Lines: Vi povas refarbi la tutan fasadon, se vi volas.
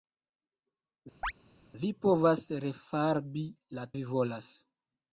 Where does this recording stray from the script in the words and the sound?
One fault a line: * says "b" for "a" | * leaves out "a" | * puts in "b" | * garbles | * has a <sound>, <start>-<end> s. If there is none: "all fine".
* has a chirp, 1.2-1.3 s
* leaves out "tutan fasadon se"